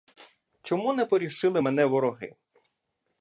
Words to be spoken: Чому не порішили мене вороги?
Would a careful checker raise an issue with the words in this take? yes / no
no